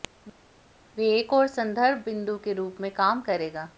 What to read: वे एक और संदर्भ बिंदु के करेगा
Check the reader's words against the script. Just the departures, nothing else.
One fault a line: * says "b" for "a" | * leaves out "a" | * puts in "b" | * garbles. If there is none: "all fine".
* puts in "रूप में काम"